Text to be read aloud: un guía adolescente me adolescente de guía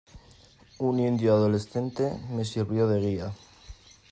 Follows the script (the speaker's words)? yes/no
no